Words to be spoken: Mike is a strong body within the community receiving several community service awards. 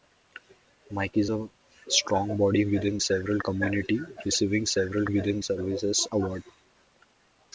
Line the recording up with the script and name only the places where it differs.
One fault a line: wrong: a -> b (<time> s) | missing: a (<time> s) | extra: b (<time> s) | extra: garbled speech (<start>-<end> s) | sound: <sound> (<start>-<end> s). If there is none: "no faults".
wrong: the -> several (3.0 s)
wrong: community -> within (5.1 s)